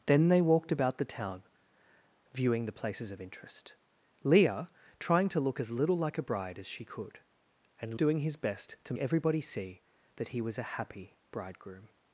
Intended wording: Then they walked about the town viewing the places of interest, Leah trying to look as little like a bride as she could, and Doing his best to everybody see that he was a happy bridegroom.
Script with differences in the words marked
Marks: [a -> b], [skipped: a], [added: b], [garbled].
Then they walked about the town viewing the places of interest, Leah trying to look as little like a bride as she could, and Doing his best to everybody see that he was a happy bridegroom.